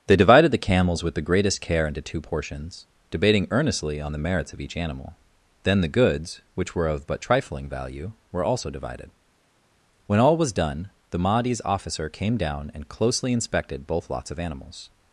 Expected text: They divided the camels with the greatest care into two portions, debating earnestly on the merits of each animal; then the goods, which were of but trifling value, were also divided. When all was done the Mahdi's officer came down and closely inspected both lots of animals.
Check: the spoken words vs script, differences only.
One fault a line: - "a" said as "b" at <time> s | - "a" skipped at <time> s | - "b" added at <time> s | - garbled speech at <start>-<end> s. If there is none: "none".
none